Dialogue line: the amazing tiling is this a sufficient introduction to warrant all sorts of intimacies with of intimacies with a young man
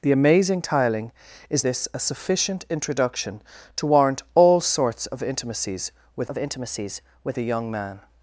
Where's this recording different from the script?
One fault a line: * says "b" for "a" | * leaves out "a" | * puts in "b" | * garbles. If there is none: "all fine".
all fine